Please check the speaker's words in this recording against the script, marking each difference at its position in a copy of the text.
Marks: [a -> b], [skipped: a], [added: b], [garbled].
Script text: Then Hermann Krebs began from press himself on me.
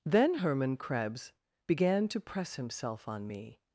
Then Hermann Krebs began [from -> to] press himself on me.